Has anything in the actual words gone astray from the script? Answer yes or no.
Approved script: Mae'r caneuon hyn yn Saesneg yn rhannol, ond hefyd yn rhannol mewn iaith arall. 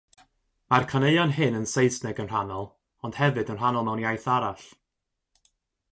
no